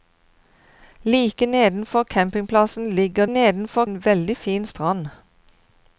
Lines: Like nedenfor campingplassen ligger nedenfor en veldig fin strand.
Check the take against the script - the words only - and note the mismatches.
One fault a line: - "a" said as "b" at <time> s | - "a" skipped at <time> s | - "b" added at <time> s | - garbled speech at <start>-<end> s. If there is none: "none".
none